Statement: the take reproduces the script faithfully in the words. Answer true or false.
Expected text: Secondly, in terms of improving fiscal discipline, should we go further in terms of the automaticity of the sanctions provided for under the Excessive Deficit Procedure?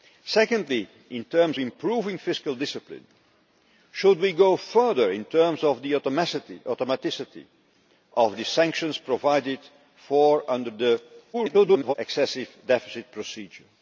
false